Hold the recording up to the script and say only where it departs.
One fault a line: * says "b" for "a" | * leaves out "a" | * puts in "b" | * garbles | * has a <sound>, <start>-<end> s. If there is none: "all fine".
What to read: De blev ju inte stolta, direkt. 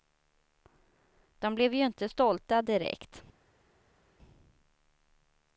all fine